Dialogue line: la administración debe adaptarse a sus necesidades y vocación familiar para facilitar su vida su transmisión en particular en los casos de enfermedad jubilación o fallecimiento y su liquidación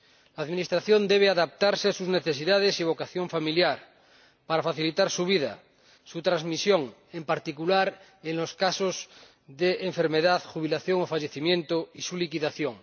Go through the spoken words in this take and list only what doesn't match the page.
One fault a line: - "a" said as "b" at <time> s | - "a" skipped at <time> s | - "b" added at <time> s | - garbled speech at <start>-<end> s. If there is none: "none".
none